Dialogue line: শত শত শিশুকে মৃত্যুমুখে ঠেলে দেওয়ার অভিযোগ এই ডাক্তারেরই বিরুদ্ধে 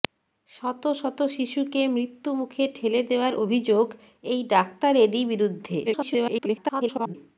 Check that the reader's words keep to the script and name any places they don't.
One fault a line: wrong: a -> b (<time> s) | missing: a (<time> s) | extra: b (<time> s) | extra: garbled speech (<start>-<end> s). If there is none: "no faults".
extra: garbled speech (5.9-7.1 s)